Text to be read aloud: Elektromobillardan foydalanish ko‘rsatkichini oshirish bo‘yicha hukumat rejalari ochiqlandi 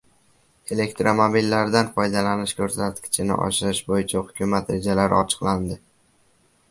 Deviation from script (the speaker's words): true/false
false